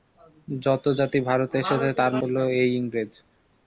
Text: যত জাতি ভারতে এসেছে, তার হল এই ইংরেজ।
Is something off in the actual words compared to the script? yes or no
no